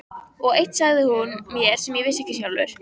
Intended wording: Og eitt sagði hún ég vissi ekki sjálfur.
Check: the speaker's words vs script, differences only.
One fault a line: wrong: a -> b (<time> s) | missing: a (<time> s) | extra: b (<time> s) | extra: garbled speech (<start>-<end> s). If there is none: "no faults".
extra: mér sem (1.5 s)